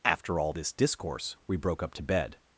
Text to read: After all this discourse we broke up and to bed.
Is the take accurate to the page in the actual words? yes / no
no